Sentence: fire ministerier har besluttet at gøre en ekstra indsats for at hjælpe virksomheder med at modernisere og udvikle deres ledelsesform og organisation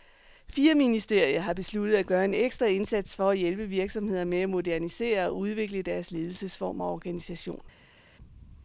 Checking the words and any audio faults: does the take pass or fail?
pass